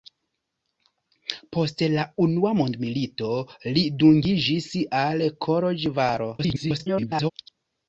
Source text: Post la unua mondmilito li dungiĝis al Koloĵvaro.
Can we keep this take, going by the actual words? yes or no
no